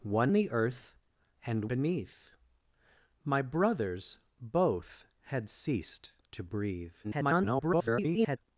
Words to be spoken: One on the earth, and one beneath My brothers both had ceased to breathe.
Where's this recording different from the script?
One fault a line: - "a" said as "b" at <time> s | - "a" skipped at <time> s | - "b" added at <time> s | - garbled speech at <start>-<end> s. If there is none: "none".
- "on" skipped at 0.3 s
- "one" skipped at 1.7 s
- garbled speech at 7.0-8.4 s